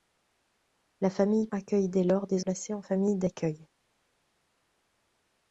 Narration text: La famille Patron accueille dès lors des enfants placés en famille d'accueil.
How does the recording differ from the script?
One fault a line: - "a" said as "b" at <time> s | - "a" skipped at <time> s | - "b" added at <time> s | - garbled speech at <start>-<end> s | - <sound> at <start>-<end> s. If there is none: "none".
- "Patron" skipped at 1.5 s
- "enfants" skipped at 2.5 s